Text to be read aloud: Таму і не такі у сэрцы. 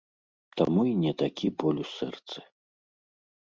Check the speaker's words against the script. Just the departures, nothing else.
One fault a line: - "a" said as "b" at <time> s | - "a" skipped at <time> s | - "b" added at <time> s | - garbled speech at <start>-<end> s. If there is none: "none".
- "боль" added at 1.6 s